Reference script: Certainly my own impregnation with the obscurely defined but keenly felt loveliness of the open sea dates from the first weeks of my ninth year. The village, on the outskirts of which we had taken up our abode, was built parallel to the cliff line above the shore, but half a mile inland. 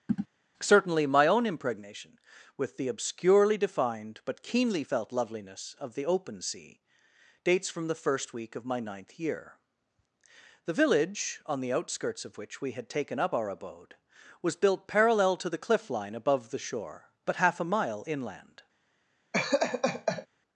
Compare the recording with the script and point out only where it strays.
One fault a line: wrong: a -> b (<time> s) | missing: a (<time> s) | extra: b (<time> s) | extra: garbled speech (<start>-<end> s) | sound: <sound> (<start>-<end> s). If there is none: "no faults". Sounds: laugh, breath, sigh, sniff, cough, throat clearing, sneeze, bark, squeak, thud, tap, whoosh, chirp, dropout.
sound: throat clearing (0.1-0.3 s)
wrong: weeks -> week (8.3 s)
sound: laugh (19.3-20.3 s)